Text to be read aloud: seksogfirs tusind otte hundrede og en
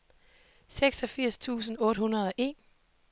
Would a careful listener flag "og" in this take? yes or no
no